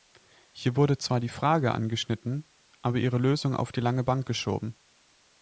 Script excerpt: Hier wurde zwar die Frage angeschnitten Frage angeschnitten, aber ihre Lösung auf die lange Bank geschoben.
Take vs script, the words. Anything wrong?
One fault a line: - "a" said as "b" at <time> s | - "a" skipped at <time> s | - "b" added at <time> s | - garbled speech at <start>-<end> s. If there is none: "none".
- "Frage angeschnitten" skipped at 2.5 s